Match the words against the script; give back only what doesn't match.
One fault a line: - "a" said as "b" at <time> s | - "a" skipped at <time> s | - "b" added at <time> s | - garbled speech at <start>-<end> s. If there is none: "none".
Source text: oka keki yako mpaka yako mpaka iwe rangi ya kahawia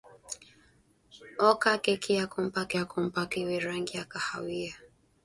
none